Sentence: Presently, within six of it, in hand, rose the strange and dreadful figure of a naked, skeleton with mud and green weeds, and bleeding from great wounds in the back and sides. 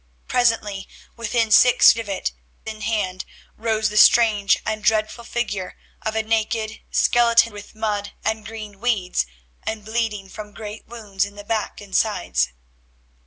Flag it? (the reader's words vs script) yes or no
no